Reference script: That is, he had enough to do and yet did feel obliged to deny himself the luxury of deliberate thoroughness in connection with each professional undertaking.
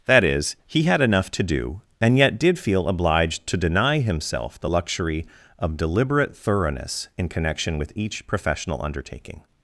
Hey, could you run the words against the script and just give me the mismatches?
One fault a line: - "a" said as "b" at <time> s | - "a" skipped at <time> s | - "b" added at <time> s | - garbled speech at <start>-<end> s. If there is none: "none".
none